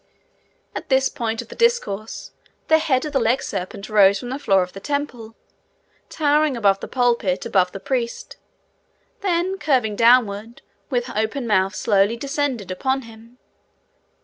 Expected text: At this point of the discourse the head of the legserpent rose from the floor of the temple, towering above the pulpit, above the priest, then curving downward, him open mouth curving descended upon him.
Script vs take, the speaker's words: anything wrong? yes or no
yes